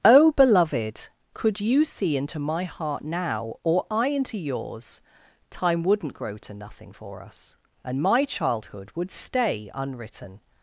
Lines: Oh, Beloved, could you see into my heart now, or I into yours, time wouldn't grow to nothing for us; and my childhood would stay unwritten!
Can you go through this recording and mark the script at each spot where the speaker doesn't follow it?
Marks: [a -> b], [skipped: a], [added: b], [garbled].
Oh, Beloved, could you see into my heart now, or I into yours, time wouldn't grow to nothing for us; and my childhood would stay unwritten!